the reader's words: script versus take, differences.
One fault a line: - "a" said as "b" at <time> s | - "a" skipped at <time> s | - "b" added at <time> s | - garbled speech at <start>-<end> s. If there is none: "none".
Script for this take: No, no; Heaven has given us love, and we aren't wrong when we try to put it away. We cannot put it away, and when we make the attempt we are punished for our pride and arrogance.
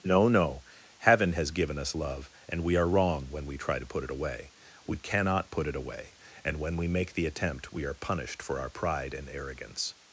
- "aren't" said as "are" at 2.8 s